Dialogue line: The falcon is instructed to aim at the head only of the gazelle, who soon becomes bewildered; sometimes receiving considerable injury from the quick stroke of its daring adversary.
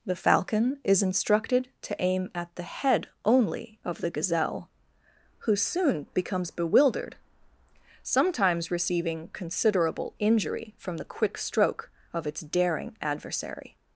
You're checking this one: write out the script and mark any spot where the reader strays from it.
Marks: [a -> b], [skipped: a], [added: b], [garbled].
The falcon is instructed to aim at the head only of the gazelle, who soon becomes bewildered; sometimes receiving considerable injury from the quick stroke of its daring adversary.